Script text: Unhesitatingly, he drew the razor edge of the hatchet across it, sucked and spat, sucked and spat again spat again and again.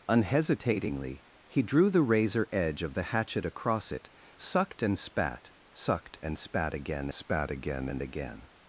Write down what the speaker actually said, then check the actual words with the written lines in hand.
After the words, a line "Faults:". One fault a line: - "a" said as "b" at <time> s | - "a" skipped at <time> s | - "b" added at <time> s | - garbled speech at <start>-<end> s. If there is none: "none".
Unhesitatingly, he drew the razor edge of the hatchet across it, sucked and spat, sucked and spat again spat again and again.
Faults:
none